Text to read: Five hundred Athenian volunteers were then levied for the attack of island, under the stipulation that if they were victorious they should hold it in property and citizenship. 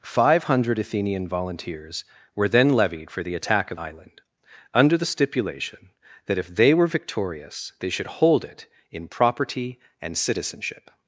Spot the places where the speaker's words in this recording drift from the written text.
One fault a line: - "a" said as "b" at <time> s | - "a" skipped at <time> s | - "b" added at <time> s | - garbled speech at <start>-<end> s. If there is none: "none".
none